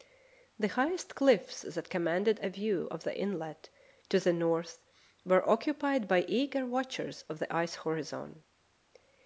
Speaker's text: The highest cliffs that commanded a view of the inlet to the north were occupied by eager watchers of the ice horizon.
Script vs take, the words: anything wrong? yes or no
no